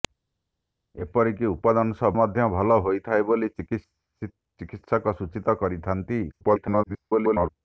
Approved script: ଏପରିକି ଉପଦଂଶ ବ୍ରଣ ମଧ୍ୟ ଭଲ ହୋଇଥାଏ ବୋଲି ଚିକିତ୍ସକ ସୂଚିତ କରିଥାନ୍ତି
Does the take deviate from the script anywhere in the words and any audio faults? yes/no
yes